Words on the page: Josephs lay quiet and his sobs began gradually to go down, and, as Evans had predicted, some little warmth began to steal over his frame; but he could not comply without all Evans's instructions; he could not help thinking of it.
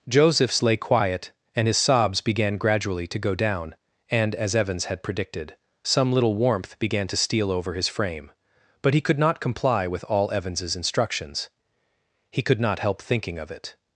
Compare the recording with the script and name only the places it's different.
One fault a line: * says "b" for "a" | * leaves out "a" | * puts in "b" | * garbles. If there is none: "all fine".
* says "with" for "without"